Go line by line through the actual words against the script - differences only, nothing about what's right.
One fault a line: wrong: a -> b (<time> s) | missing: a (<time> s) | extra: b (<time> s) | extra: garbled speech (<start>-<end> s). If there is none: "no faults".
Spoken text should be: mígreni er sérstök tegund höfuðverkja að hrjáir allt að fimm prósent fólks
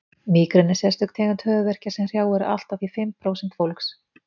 wrong: að -> sem (2.0 s)
extra: því (2.8 s)